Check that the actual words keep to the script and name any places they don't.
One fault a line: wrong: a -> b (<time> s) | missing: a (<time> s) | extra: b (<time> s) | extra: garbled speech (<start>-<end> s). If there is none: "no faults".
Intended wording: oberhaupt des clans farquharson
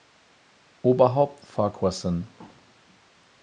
missing: des clans (1.4 s)